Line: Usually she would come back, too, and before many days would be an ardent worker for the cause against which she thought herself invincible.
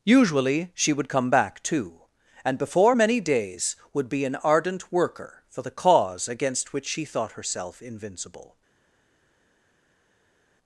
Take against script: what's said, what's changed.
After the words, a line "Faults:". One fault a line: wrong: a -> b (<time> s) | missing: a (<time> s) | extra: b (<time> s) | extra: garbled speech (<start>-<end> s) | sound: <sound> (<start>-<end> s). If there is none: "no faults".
Usually she would come back, too, and before many days would be an ardent worker for the cause against which she thought herself invincible.
Faults:
no faults